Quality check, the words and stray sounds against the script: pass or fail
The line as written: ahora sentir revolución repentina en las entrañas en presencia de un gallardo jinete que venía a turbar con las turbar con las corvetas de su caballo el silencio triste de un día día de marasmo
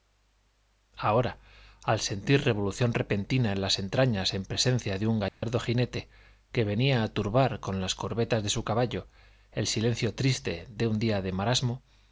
fail